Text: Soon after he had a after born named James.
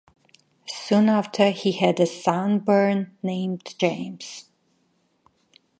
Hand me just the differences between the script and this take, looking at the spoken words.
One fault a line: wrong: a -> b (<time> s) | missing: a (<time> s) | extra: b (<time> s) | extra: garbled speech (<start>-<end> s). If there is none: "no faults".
wrong: after -> son (2.1 s)